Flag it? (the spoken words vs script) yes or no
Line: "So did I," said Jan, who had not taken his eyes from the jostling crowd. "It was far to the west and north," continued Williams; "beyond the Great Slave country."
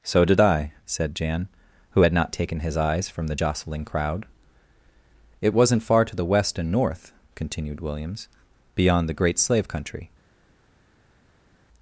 yes